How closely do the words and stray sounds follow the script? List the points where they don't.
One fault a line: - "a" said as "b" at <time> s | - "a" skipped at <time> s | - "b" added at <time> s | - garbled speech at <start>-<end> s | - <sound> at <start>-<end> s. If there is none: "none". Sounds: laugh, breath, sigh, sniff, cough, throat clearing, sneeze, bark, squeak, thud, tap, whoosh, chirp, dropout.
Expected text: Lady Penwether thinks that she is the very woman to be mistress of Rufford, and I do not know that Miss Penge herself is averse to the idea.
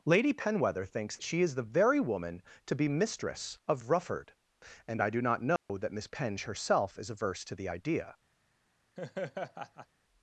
- "that" skipped at 1.1 s
- dropout at 5.6-5.7 s
- laugh at 9.0-9.9 s